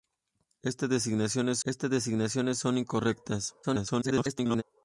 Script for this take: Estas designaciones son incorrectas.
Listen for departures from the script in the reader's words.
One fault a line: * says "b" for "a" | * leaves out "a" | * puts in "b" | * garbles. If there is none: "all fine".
* puts in "estas designaciones"
* garbles